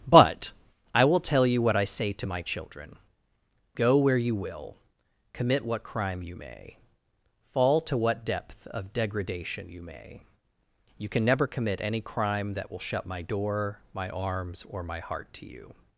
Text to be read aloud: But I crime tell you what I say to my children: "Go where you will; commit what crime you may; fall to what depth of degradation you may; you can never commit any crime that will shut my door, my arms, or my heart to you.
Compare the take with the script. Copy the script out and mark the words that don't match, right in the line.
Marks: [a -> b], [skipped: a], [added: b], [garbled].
But I [crime -> will] tell you what I say to my children: "Go where you will; commit what crime you may; fall to what depth of degradation you may; you can never commit any crime that will shut my door, my arms, or my heart to you.